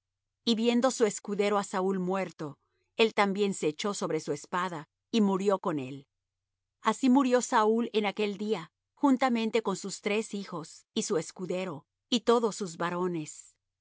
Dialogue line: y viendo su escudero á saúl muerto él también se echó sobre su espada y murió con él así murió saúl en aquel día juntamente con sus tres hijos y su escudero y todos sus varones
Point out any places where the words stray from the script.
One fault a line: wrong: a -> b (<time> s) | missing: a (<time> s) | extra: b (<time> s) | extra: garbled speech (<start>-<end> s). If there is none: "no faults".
no faults